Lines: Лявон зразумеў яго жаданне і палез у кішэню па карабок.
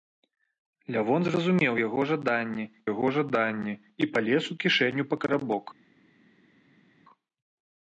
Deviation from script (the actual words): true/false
true